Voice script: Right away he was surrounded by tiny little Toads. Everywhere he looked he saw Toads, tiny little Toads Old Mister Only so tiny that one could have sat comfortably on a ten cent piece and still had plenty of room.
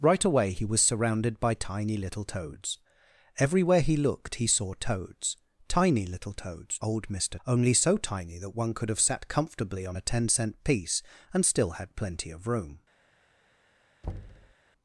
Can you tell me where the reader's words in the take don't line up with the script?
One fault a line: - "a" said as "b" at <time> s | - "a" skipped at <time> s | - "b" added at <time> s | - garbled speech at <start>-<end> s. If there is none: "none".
none